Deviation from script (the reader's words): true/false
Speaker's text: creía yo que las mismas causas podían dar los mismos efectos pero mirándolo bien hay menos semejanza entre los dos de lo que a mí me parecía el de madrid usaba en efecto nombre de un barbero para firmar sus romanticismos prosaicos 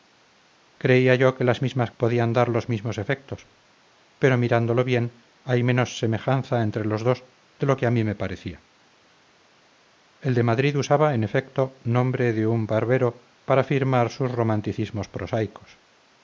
true